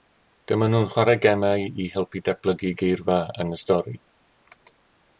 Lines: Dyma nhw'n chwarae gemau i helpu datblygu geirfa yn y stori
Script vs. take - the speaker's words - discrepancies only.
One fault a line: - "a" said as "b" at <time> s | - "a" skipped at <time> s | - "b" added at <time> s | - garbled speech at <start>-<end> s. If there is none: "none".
none